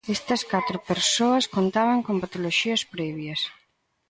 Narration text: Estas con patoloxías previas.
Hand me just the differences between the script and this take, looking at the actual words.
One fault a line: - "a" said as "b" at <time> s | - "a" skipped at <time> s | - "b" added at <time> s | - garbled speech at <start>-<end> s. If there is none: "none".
- "catro persoas contaban" added at 0.5 s